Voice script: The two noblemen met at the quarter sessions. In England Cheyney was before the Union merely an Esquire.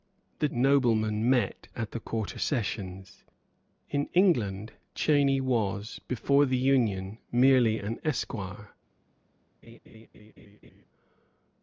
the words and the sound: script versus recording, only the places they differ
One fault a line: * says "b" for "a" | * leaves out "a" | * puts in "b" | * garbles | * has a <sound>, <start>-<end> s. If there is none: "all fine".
* leaves out "two"
* has a laugh, 9.6-10.9 s